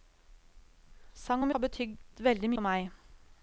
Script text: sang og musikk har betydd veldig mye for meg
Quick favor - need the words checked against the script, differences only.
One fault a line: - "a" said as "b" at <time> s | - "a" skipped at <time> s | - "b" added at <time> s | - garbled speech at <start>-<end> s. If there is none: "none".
- "musikk" skipped at 1.5 s
- "mye" skipped at 2.5 s